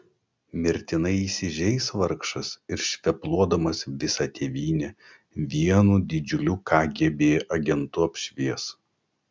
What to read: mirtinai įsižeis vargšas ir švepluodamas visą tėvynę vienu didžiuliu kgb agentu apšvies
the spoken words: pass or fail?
pass